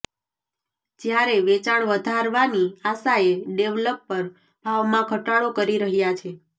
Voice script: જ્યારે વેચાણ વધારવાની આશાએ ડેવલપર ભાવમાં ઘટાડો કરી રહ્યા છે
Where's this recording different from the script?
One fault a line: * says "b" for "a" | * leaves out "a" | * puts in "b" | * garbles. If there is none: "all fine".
all fine